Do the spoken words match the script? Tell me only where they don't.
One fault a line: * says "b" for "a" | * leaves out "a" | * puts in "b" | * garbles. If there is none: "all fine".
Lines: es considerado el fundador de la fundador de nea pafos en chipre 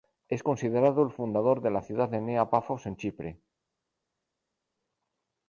* says "ciudad" for "fundador"